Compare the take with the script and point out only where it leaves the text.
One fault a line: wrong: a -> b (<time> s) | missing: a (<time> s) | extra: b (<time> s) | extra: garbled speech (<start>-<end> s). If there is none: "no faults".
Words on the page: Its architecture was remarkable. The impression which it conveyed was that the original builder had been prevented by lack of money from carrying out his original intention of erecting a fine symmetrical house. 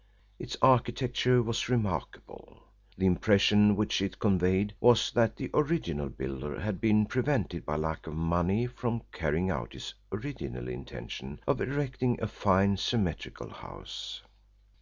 no faults